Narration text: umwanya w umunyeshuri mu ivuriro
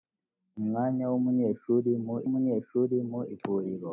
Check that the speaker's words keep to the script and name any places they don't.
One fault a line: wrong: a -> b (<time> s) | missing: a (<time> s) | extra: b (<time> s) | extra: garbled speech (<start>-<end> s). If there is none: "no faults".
extra: umunyeshuri mu (2.3 s)